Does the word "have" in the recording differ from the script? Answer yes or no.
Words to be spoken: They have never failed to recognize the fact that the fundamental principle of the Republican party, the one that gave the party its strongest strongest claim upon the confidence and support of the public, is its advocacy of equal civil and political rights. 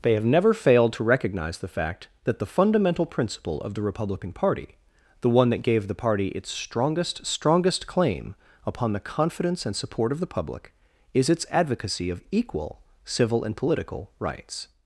no